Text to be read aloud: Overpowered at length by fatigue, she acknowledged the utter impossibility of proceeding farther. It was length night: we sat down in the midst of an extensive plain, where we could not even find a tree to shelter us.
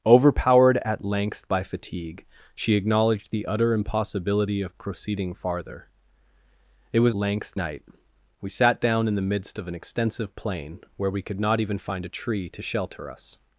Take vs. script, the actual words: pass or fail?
pass